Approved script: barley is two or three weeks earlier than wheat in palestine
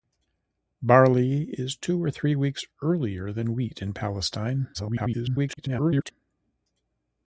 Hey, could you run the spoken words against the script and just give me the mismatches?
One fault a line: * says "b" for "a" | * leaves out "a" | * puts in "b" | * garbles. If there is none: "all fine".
* garbles